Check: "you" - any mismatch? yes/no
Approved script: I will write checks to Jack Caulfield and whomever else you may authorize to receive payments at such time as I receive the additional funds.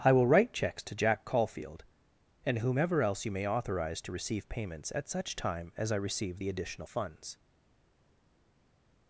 no